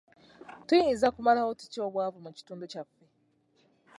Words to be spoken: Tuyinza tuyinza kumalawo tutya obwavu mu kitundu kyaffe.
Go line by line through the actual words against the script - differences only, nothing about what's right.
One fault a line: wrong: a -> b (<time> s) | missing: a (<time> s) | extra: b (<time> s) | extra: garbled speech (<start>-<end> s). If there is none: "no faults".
missing: tuyinza (1.1 s)